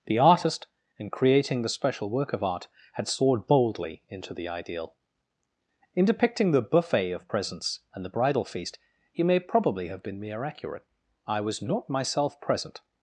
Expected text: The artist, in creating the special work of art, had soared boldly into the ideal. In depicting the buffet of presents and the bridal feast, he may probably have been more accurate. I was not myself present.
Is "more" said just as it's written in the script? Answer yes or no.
no